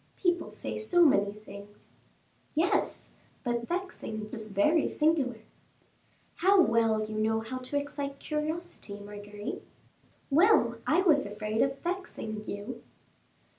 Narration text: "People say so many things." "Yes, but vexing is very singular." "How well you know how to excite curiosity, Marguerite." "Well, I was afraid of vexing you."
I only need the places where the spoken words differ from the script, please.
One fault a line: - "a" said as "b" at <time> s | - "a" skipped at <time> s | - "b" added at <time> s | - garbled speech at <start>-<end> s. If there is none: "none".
none